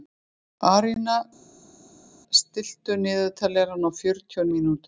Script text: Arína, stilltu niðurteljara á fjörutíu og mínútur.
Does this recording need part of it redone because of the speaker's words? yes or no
no